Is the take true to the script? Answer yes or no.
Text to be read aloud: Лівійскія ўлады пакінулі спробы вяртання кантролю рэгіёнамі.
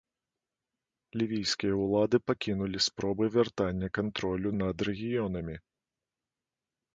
no